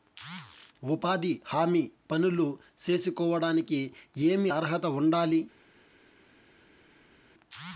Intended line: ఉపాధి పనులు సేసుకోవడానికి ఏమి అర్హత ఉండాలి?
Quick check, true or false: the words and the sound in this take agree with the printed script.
false